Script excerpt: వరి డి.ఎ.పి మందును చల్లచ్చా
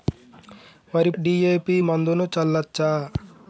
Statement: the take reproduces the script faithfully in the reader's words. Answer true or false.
true